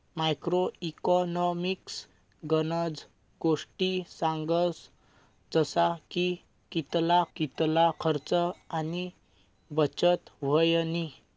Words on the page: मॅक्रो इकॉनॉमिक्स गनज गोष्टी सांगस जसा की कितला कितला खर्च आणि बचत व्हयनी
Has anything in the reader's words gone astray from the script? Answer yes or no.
no